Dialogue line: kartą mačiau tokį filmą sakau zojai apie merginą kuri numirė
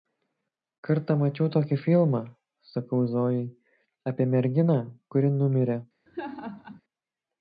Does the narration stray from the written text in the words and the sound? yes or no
yes